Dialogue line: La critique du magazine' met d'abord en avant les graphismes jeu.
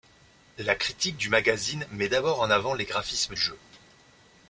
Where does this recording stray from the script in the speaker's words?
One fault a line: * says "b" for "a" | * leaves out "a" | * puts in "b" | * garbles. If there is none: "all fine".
all fine